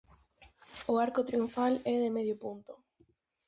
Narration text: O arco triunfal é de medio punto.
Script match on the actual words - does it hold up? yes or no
yes